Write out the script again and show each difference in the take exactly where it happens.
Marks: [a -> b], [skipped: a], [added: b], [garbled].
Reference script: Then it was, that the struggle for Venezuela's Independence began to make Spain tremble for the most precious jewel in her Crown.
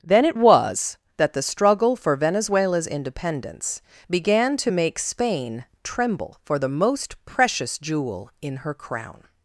Then it was, that the struggle for Venezuela's Independence began to make Spain tremble for the most precious jewel in her Crown.